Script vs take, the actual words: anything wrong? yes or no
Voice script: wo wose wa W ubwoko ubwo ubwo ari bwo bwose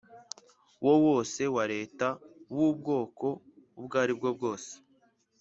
yes